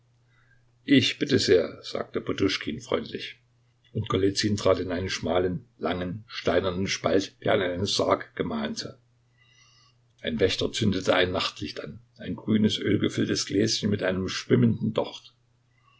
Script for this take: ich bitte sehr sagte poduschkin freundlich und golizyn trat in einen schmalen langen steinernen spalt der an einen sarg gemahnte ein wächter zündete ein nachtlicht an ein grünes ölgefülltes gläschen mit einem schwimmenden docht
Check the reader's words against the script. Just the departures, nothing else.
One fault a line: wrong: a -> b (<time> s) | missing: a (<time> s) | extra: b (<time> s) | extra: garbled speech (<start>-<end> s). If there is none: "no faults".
no faults